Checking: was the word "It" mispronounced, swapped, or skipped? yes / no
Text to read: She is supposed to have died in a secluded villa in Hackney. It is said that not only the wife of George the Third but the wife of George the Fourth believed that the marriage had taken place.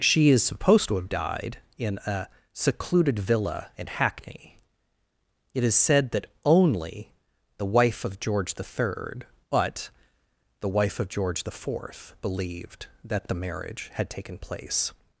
no